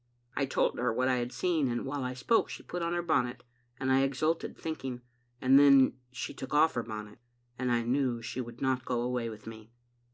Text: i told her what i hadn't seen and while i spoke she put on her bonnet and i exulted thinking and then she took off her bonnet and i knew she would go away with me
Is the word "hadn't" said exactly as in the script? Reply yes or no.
no